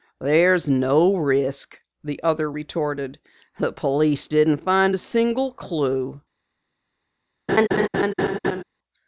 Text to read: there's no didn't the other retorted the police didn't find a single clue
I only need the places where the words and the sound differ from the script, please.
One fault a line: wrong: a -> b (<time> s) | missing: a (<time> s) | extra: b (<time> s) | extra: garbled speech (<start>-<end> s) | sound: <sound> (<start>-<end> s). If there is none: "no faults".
wrong: didn't -> risk (1.1 s)
sound: laugh (7.5-8.6 s)